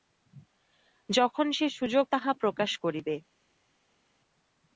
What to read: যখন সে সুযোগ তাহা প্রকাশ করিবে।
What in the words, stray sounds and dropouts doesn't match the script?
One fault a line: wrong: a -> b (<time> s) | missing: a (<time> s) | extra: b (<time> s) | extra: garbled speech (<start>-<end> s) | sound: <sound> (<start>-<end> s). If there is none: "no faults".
no faults